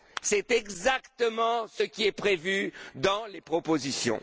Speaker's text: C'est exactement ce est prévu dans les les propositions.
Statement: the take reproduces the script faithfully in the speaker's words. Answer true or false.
false